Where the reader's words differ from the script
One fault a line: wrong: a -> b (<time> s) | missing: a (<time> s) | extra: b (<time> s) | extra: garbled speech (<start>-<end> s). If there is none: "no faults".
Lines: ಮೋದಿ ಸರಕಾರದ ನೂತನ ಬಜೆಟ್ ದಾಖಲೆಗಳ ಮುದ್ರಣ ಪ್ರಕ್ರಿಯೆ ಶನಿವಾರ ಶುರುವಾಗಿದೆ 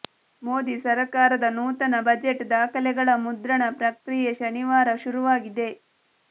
no faults